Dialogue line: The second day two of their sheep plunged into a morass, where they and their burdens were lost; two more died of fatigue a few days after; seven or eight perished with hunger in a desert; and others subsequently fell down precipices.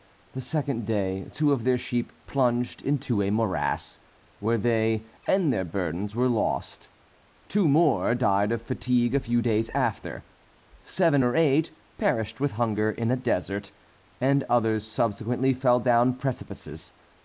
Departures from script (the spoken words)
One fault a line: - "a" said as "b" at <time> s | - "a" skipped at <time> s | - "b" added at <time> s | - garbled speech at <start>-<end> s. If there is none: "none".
none